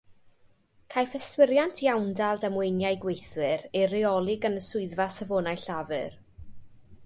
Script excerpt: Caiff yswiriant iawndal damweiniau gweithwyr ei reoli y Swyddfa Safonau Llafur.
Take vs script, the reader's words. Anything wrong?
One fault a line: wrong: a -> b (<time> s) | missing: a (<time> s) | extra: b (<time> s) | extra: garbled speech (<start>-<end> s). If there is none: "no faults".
extra: gan (4.4 s)